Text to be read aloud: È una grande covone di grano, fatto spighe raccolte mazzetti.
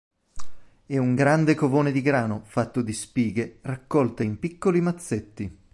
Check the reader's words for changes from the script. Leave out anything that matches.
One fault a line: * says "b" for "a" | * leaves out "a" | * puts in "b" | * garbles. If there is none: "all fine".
* says "un" for "una"
* puts in "di"
* puts in "in piccoli"